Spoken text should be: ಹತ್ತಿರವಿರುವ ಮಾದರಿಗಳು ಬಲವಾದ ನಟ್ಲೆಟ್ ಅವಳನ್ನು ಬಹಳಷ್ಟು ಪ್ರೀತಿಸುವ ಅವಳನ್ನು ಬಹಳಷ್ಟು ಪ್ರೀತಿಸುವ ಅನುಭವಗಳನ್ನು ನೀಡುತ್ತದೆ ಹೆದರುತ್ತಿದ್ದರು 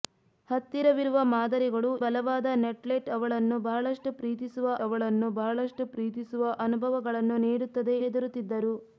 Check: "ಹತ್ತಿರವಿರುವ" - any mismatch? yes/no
no